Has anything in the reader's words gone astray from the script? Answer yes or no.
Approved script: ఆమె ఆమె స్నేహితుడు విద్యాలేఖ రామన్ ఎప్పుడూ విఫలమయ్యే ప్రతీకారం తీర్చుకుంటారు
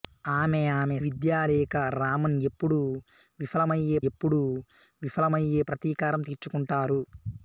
yes